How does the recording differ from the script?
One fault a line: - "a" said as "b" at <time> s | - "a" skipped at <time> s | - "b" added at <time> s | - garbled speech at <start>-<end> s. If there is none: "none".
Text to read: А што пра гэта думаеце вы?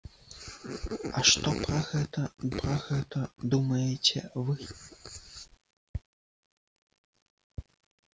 - "пра гэта" added at 2.6 s